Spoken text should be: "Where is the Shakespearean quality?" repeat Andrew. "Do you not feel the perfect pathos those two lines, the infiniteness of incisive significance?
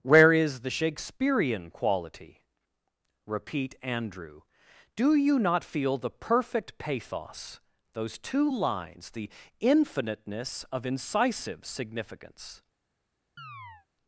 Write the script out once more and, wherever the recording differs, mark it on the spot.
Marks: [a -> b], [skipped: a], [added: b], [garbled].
"Where is the Shakespearean quality?" repeat Andrew. "Do you not feel the perfect pathos those two lines, the infiniteness of incisive significance?